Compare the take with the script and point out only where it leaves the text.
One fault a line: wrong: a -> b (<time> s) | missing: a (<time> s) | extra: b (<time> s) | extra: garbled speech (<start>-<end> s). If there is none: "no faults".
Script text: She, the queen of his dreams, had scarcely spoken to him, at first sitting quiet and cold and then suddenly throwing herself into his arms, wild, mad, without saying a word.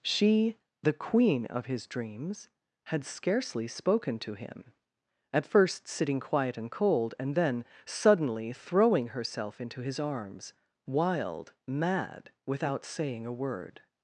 no faults